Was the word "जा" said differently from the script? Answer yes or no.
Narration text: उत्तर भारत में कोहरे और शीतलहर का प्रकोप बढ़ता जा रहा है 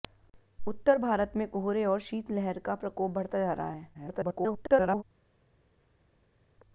no